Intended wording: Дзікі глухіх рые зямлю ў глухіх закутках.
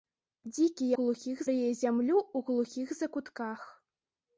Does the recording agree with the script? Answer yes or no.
yes